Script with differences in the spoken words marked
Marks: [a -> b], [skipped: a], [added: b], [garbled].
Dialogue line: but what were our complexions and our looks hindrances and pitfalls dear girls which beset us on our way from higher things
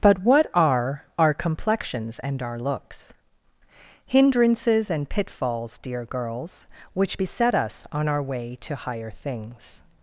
but what [were -> are] our complexions and our looks hindrances and pitfalls dear girls which beset us on our way [from -> to] higher things